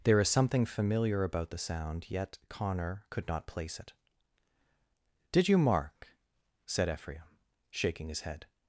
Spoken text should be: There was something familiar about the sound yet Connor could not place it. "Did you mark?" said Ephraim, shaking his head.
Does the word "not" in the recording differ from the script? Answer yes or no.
no